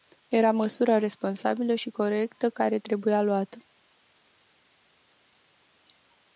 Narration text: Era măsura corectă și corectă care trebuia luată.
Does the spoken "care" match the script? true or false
true